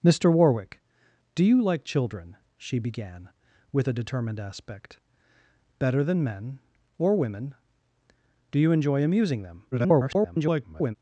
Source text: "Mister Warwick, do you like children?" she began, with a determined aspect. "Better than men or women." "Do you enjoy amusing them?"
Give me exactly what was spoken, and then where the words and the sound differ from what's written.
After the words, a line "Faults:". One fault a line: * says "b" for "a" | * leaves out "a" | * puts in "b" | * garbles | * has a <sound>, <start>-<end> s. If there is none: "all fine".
"Mister Warwick, do you like children?" she began, with a determined aspect. "Better than men or women." "Do you enjoy amusing them?" [garbled]
Faults:
* garbles